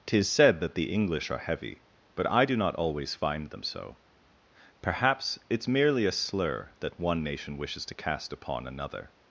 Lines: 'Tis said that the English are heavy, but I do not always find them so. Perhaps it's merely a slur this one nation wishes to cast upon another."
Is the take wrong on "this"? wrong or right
wrong